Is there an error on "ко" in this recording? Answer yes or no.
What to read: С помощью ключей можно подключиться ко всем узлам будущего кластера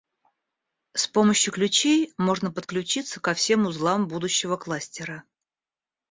no